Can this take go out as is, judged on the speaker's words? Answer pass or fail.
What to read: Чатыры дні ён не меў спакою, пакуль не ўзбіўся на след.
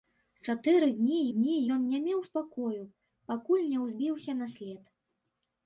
fail